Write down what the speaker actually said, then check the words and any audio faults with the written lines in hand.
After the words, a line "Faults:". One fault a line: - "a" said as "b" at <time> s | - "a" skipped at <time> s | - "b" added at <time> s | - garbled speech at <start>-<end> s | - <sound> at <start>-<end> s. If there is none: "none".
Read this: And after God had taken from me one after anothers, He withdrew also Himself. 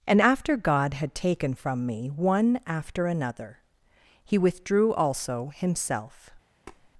And after God had taken from me one after another, He withdrew also Himself.
Faults:
- "anothers" said as "another" at 3.1 s
- tap at 6.7-6.9 s